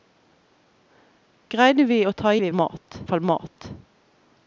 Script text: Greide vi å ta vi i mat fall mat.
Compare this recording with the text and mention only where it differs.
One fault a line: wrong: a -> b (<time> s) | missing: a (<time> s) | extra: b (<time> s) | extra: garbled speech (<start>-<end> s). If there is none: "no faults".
no faults